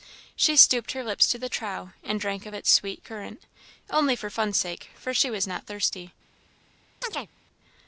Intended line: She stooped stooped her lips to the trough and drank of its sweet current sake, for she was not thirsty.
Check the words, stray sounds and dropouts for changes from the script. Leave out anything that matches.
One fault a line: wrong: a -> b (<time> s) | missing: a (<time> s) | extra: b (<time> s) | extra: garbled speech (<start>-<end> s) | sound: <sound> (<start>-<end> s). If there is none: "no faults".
missing: stooped (0.9 s)
extra: only for fun's (3.9 s)
sound: chirp (7.0-7.3 s)